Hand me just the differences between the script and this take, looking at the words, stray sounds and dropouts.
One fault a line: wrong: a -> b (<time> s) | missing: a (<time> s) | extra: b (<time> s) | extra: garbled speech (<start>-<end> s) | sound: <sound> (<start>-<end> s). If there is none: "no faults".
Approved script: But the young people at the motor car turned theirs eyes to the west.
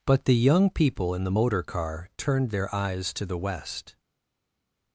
wrong: at -> in (1.1 s)
wrong: theirs -> their (2.5 s)